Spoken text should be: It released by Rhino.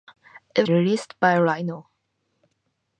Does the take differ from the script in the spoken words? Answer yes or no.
no